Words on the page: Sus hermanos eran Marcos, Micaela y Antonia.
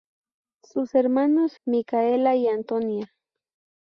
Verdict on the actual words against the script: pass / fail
fail